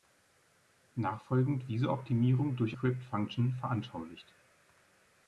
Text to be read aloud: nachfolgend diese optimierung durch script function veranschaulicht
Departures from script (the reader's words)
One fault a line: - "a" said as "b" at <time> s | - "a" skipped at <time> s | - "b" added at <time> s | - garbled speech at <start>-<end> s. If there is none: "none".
none